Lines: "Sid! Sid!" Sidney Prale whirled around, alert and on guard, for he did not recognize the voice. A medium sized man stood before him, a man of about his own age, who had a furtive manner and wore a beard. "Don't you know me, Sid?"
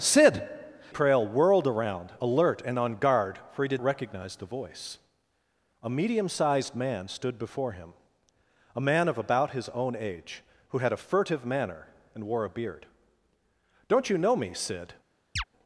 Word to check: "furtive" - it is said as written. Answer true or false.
true